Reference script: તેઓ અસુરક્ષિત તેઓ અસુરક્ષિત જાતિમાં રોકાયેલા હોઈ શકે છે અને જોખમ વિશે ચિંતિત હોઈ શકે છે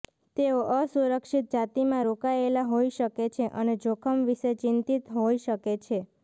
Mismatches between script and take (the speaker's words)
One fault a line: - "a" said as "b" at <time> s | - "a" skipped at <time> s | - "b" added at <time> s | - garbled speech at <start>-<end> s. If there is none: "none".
- "તેઓ અસુરક્ષિત" skipped at 1.5 s